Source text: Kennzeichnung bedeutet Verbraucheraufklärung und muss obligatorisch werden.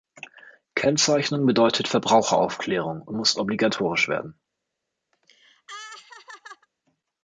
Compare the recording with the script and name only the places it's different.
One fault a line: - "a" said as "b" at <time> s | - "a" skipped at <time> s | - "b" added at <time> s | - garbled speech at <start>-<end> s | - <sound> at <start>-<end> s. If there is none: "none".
- laugh at 5.1-6.7 s